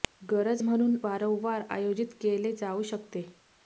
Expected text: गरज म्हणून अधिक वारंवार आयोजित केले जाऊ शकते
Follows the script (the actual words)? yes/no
no